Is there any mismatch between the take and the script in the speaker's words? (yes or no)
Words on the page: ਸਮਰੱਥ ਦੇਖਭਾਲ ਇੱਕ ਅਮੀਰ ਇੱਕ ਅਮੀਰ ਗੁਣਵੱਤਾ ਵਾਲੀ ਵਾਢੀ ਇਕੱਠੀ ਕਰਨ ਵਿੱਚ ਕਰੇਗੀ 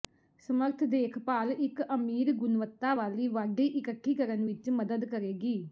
yes